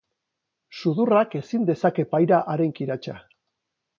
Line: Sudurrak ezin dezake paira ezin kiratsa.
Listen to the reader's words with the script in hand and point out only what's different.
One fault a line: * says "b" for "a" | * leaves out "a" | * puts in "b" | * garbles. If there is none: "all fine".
* says "haren" for "ezin"